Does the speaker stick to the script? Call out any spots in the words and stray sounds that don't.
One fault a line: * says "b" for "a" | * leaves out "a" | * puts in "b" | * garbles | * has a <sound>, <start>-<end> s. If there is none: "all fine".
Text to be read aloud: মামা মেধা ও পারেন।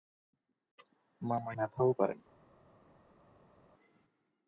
all fine